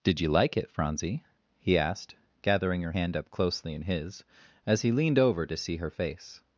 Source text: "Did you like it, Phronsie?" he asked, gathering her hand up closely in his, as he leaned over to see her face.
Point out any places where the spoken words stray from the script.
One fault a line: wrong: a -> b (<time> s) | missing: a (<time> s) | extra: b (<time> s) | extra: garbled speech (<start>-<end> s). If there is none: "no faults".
no faults